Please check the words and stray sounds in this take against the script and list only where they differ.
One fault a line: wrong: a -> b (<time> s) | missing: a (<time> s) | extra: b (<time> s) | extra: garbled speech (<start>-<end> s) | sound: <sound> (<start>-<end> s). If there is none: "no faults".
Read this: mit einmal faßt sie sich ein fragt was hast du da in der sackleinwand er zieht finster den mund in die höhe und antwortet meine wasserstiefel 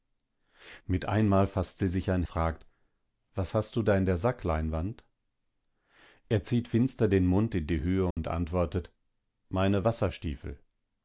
sound: dropout (8.1-8.2 s)